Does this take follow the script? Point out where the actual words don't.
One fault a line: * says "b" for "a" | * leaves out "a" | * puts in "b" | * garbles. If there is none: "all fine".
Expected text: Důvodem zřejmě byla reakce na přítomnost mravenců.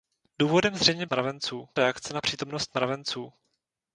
* says "mravenců" for "byla"